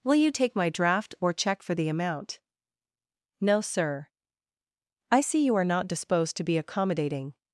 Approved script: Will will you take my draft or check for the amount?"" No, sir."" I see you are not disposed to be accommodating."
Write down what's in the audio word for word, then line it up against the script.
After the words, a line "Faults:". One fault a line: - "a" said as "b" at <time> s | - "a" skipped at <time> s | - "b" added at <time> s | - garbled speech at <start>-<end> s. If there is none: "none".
Will you take my draft or check for the amount?"" No, sir."" I see you are not disposed to be accommodating."
Faults:
- "will" skipped at 0.1 s